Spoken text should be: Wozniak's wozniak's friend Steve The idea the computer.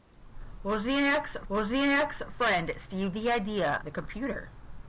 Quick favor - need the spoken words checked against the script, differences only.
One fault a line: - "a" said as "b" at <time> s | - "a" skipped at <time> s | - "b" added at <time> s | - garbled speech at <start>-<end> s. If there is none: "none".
none